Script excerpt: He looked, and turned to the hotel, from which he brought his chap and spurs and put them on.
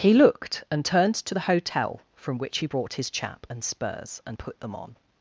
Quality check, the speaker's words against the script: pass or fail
pass